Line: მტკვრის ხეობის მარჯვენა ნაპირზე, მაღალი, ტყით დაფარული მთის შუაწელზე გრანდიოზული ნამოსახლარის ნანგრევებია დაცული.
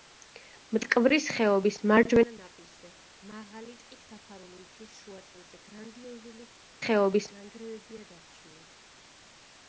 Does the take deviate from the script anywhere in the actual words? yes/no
yes